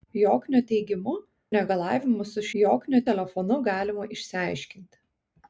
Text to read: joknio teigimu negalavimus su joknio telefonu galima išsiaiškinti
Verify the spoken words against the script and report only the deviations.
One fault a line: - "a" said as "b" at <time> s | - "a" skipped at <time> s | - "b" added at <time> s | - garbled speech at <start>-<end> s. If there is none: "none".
none